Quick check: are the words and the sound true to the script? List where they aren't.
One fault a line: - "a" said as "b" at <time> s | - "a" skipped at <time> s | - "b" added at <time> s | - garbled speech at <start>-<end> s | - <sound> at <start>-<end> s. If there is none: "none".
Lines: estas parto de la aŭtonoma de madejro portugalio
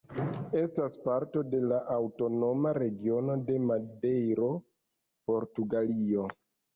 - "regiono" added at 2.8 s